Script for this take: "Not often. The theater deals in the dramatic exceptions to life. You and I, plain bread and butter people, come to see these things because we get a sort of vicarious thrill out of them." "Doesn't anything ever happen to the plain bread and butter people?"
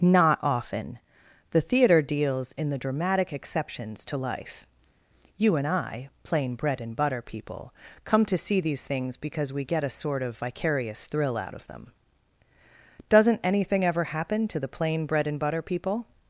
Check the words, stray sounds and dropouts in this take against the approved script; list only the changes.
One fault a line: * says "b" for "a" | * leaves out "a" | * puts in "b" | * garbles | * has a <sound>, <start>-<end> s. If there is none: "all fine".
all fine